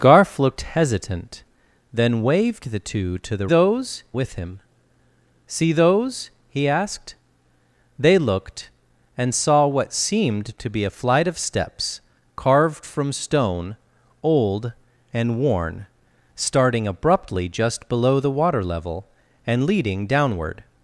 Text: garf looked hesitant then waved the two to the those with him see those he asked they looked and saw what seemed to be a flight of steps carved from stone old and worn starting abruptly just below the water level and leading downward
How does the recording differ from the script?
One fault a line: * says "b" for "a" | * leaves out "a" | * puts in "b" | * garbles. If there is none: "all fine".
all fine